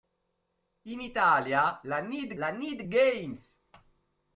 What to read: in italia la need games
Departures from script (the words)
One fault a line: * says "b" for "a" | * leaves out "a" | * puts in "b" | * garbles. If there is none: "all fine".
* puts in "la need"